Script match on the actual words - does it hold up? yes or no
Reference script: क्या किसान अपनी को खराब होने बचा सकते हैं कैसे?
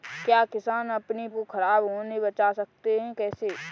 yes